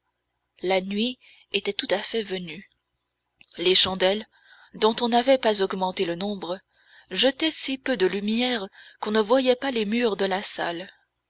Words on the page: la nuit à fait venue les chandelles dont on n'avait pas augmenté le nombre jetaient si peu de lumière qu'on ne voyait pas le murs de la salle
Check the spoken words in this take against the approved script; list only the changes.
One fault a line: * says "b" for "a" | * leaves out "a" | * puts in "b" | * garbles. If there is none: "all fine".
* puts in "était tout"
* says "les" for "le"